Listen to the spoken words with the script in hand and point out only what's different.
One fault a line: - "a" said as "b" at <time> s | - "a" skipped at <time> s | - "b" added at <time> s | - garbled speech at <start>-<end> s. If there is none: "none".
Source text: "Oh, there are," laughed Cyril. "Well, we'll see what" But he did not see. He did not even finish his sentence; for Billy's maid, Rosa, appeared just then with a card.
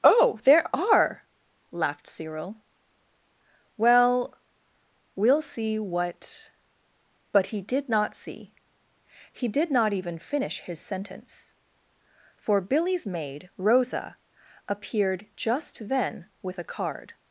none